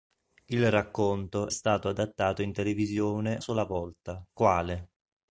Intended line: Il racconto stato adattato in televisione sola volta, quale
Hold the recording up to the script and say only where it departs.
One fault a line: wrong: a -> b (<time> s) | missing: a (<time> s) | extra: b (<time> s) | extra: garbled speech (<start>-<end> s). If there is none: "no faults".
no faults